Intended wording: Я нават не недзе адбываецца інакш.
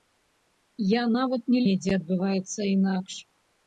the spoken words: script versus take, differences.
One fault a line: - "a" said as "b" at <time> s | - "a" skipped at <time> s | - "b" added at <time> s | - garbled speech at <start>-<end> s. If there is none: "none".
none